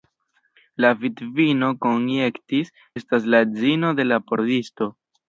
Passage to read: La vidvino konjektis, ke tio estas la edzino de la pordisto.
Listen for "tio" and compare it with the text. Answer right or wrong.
wrong